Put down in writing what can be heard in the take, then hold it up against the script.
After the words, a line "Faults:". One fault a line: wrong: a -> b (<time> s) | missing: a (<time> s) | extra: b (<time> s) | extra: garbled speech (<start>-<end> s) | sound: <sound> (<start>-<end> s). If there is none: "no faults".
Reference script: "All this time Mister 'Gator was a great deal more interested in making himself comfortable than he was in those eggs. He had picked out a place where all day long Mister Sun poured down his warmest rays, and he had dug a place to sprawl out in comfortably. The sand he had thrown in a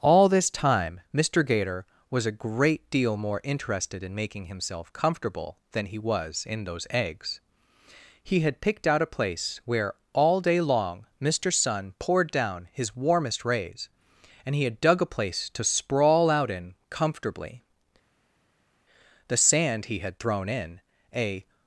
"All this time Mister 'Gator was a great deal more interested in making himself comfortable than he was in those eggs. He had picked out a place where all day long Mister Sun poured down his warmest rays, and he had dug a place to sprawl out in comfortably. The sand he had thrown in a
Faults:
no faults